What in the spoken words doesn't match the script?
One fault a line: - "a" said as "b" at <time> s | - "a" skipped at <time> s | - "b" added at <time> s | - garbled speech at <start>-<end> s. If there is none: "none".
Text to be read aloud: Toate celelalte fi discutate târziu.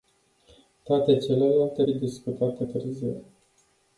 none